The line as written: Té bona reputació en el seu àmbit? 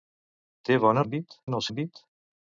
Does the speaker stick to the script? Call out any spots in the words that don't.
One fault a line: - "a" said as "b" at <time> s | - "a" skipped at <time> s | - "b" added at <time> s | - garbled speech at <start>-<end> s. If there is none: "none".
- "reputació" said as "àmbit" at 1.0 s
- "seu" skipped at 1.6 s